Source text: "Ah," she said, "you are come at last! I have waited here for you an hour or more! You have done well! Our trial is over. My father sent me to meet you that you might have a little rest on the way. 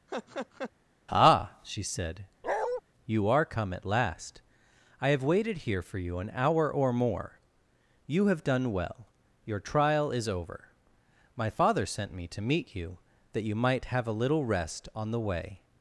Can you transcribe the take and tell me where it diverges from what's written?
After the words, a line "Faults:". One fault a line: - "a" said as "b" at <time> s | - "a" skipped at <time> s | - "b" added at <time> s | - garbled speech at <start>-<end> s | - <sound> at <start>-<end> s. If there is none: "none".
"Ah," she said, "you are come at last! I have waited here for you an hour or more! You have done well! Your trial is over. My father sent me to meet you that you might have a little rest on the way.
Faults:
- laugh at 0.1-0.7 s
- bark at 2.4-2.8 s
- "Our" said as "Your" at 9.4 s